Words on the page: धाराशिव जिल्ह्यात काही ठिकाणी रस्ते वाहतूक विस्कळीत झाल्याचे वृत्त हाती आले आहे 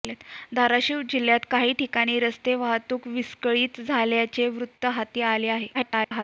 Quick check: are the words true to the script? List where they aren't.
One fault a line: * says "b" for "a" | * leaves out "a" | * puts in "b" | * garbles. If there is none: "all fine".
* garbles